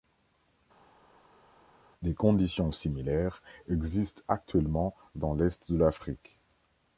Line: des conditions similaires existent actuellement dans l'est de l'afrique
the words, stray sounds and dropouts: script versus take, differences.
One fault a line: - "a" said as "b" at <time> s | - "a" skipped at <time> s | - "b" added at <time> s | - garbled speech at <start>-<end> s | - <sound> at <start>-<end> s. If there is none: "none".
none